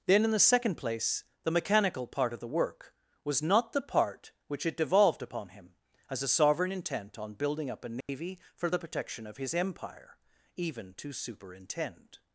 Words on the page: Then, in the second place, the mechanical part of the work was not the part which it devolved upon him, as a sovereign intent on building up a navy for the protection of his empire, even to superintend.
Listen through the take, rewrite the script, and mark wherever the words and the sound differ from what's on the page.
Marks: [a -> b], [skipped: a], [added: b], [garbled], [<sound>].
Then, in the second place, the mechanical part of the work was not the part which it devolved upon him, as a sovereign intent on building up a navy [dropout] for the protection of his empire, even to superintend.